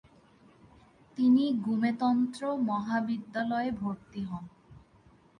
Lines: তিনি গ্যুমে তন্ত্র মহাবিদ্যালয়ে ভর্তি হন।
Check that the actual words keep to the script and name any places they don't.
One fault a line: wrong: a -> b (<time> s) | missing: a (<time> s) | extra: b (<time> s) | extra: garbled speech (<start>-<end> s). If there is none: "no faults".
no faults